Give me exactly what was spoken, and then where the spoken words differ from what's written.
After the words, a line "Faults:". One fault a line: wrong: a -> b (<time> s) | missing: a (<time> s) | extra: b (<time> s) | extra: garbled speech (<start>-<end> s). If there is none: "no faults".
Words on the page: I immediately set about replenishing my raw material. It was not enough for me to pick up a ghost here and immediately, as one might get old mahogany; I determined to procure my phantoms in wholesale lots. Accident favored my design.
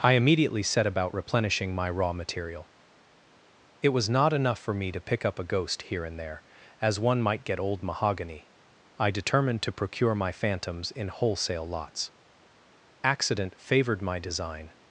I immediately set about replenishing my raw material. It was not enough for me to pick up a ghost here and there, as one might get old mahogany; I determined to procure my phantoms in wholesale lots. Accident favored my design.
Faults:
wrong: immediately -> there (6.2 s)